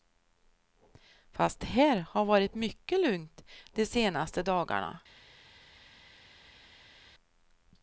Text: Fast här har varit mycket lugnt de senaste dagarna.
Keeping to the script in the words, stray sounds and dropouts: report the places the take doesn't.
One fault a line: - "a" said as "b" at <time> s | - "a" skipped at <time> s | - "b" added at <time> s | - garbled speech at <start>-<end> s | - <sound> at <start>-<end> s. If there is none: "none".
none